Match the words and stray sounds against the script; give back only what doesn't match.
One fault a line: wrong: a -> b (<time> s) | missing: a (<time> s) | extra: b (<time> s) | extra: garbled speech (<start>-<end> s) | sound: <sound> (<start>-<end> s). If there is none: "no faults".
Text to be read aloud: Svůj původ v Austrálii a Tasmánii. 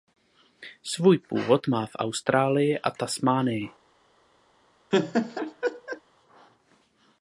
extra: má (1.7 s)
sound: laugh (4.9-6.0 s)